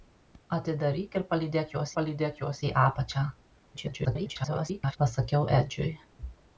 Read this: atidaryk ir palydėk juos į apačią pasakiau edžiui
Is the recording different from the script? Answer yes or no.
yes